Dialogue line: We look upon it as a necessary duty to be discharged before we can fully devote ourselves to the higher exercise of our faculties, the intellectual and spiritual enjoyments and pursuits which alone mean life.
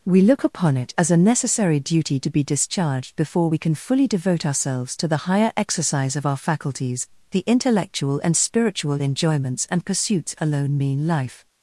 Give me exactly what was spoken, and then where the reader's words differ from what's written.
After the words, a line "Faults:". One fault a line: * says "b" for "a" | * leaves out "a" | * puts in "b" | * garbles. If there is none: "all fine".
We look upon it as a necessary duty to be discharged before we can fully devote ourselves to the higher exercise of our faculties, the intellectual and spiritual enjoyments and pursuits alone mean life.
Faults:
* leaves out "which"